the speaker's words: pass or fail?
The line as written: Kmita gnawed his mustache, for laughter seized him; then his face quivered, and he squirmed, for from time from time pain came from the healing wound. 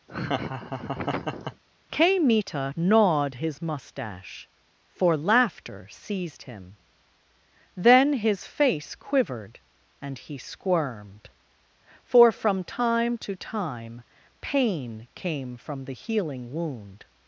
fail